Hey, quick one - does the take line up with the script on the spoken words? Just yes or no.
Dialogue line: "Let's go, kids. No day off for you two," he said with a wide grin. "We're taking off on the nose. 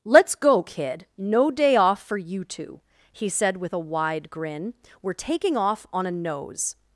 no